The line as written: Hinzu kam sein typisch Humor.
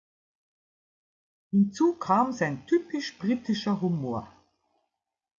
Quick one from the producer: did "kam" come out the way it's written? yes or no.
yes